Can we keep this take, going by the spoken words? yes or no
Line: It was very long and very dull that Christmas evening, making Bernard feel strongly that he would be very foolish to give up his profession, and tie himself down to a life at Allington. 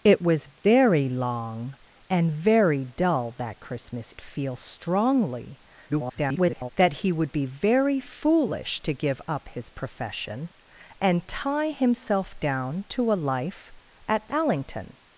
no